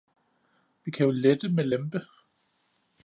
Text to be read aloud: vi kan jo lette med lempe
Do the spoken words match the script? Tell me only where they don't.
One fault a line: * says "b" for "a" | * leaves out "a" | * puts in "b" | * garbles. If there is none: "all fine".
all fine